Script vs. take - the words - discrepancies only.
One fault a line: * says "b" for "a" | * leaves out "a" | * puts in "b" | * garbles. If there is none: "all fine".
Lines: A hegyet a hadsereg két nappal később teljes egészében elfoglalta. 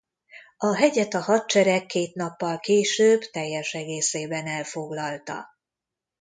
all fine